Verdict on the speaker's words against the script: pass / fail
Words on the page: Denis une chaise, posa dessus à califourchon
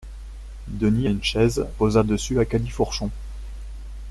pass